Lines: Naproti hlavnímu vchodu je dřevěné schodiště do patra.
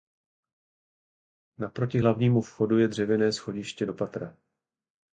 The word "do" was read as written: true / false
true